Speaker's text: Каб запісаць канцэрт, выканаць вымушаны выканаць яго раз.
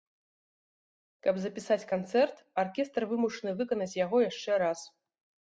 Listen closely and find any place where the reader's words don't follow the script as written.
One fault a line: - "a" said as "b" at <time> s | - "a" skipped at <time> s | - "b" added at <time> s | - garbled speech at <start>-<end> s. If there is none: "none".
- "выканаць" said as "аркестр" at 2.6 s
- "яшчэ" added at 4.3 s